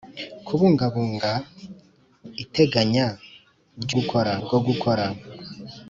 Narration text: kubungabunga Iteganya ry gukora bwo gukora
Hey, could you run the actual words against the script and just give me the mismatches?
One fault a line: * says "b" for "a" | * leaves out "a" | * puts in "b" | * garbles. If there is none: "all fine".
all fine